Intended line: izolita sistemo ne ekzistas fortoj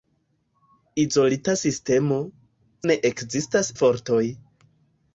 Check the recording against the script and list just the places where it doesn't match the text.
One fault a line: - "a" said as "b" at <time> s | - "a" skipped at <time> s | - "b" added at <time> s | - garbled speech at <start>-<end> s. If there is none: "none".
none